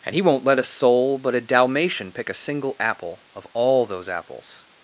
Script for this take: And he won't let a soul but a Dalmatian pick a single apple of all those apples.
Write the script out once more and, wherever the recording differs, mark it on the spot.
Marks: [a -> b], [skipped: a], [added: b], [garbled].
And he won't let a soul but a Dalmatian pick a single apple of all those apples.